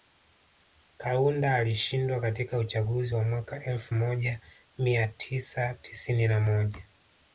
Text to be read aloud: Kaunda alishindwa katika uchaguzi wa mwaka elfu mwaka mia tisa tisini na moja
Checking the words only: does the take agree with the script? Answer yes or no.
no